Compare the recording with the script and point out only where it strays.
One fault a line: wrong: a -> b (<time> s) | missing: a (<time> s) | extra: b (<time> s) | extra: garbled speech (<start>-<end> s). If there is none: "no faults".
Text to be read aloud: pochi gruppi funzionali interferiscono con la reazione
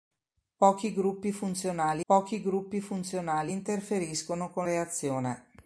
extra: pochi gruppi funzionali (2.1 s)
missing: la (4.7 s)